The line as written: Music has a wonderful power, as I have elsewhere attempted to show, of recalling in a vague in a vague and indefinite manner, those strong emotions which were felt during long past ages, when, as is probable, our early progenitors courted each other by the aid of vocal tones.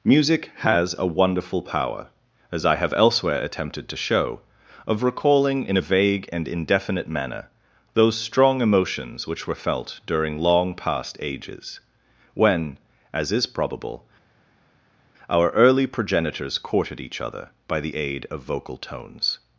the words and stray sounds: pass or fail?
fail